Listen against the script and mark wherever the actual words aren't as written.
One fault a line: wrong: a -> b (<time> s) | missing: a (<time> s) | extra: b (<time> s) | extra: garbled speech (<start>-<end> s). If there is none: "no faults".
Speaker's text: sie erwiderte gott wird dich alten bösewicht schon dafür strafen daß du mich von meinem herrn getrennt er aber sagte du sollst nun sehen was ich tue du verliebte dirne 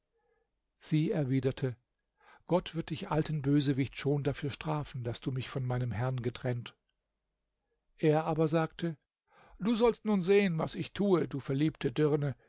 no faults